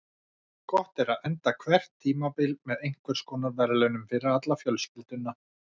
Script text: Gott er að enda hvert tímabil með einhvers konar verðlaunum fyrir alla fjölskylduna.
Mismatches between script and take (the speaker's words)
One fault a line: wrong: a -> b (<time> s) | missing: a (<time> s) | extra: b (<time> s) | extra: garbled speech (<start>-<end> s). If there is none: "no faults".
no faults